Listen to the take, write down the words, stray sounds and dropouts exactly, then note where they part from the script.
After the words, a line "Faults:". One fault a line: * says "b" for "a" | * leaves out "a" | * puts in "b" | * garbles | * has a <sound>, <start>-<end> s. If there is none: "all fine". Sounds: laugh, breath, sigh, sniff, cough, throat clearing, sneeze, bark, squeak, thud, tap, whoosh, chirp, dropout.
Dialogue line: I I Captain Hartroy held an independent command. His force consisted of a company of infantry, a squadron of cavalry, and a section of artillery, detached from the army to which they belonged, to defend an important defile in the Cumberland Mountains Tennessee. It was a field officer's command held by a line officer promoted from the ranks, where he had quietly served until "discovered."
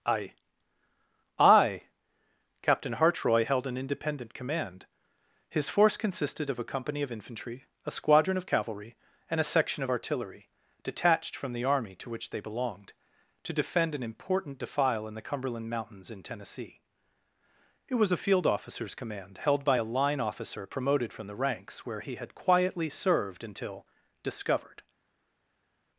I I Captain Hartroy held an independent command. His force consisted of a company of infantry, a squadron of cavalry, and a section of artillery, detached from the army to which they belonged, to defend an important defile in the Cumberland Mountains in Tennessee. It was a field officer's command held by a line officer promoted from the ranks, where he had quietly served until "discovered."
Faults:
* puts in "in"